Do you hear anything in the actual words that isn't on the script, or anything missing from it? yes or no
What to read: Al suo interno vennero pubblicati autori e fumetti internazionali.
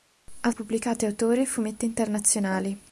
yes